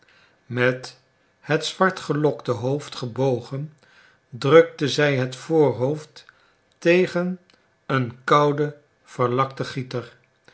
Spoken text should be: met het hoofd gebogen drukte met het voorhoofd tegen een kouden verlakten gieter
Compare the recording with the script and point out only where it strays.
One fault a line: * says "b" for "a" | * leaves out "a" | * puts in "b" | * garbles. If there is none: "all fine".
* puts in "zwartgelokte"
* says "zij" for "met"